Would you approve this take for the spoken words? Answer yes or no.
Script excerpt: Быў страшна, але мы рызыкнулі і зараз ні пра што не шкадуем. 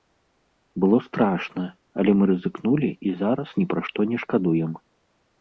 no